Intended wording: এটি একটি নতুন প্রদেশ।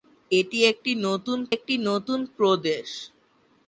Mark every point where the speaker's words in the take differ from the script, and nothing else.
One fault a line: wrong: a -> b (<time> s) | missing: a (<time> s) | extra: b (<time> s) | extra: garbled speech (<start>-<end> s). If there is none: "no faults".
extra: একটি নতুন (1.5 s)